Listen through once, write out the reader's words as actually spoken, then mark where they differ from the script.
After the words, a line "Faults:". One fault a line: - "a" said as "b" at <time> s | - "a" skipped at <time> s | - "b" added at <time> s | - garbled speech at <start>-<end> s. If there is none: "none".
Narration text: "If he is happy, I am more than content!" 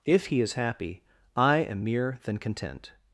"If he is happy, I am mere than content!"
Faults:
- "more" said as "mere" at 1.8 s